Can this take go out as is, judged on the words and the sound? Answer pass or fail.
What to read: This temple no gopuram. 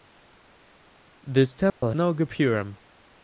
fail